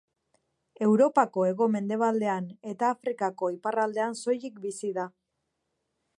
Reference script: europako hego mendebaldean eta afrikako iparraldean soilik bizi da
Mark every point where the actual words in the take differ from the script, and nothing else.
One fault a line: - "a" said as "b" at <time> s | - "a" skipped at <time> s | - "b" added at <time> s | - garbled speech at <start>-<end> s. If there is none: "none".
none